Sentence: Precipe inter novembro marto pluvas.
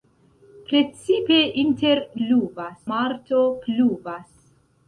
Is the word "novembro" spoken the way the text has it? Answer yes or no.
no